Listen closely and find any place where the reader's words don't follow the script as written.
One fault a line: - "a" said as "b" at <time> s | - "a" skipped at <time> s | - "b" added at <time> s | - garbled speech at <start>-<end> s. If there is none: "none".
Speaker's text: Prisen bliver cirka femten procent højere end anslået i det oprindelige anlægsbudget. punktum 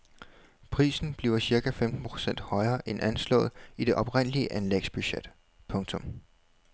none